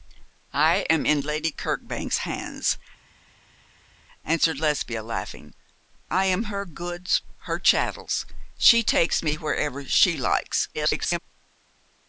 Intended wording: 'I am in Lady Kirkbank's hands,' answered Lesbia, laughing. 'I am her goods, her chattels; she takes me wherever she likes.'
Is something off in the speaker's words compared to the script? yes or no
yes